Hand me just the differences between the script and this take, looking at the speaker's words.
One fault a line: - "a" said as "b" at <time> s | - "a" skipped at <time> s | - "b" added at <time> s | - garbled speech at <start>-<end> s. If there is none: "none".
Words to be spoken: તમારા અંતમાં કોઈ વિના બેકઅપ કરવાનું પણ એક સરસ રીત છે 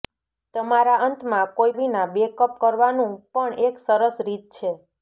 none